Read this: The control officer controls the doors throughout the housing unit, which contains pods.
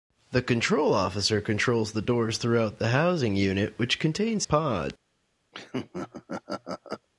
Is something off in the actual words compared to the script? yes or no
no